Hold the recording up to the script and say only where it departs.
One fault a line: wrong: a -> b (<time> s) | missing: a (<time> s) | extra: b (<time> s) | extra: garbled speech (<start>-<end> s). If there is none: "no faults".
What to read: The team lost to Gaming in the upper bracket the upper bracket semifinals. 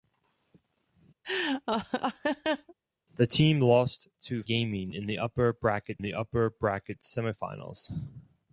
no faults